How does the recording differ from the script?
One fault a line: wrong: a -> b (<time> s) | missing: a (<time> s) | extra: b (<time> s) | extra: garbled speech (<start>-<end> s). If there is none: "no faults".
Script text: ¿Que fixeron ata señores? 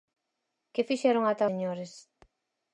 no faults